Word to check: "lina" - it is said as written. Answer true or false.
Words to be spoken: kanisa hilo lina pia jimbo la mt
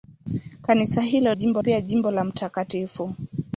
false